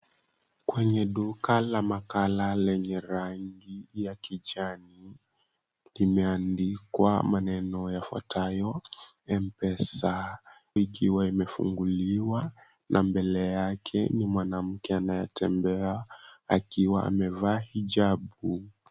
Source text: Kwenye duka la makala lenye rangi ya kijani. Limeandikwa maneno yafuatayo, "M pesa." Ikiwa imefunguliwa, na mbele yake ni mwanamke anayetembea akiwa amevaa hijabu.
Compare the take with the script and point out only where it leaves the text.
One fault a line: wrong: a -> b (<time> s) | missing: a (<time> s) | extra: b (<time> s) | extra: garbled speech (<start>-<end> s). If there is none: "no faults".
no faults